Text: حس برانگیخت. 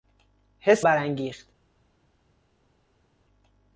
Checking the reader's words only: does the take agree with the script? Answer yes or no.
yes